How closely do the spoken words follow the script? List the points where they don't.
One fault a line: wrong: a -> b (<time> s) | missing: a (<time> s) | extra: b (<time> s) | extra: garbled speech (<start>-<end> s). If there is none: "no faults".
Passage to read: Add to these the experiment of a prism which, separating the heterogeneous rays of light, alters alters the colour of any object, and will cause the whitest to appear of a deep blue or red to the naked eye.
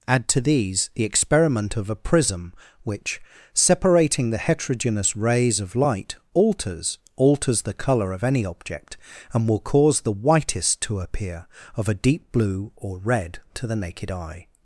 no faults